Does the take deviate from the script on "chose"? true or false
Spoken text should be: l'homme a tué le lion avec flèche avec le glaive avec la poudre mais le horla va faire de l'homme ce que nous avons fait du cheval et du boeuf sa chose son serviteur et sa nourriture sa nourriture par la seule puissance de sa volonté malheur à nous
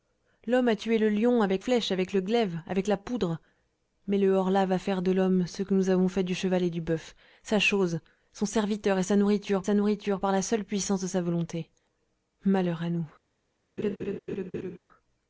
false